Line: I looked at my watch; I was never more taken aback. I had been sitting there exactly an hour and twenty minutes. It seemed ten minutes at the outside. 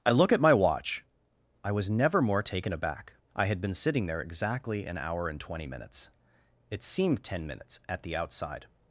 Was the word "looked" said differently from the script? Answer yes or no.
yes